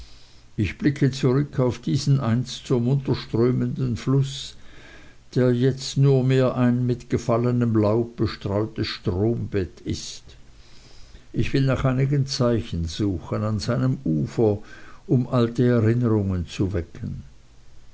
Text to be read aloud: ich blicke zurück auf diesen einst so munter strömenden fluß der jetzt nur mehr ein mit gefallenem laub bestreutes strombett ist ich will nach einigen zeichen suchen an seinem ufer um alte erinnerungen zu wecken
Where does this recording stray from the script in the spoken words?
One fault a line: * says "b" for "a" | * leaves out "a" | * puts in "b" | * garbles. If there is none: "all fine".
all fine